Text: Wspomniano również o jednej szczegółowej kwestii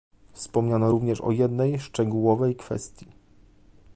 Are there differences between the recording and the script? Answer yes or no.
no